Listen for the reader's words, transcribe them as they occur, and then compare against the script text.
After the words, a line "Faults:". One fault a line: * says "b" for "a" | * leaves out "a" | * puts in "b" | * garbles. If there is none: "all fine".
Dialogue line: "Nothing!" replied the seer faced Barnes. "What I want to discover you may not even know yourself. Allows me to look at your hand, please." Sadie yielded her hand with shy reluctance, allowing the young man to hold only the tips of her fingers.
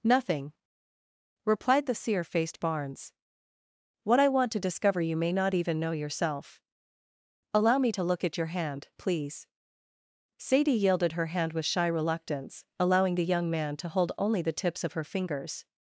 "Nothing!" replied the seer faced Barnes. "What I want to discover you may not even know yourself. Allow me to look at your hand, please." Sadie yielded her hand with shy reluctance, allowing the young man to hold only the tips of her fingers.
Faults:
* says "Allow" for "Allows"